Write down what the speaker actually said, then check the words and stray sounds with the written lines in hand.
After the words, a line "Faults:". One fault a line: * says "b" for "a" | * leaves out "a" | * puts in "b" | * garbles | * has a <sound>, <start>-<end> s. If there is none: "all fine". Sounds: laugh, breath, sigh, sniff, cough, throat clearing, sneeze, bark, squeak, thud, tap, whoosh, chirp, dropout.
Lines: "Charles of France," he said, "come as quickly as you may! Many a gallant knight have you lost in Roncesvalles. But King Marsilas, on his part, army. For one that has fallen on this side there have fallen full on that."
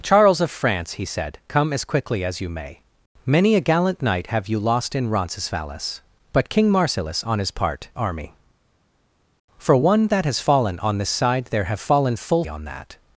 "Charles of France," he said, "come as quickly as you may! Many a gallant knight have you lost in Roncesvalles. But King Marsilas, on his part, army. For one that has fallen on this side there have fallen full on that."
Faults:
all fine